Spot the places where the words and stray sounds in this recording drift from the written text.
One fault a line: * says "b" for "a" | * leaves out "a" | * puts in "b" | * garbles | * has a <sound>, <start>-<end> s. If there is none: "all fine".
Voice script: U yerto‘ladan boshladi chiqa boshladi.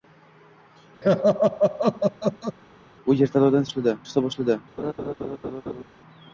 * has a laugh, 1.0-2.6 s
* has a laugh, 4.8-5.8 s